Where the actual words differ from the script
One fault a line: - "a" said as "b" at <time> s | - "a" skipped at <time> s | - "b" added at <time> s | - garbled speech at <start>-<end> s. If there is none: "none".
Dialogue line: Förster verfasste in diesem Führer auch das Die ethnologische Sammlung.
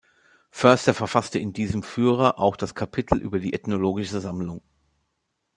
- "Kapitel über" added at 2.7 s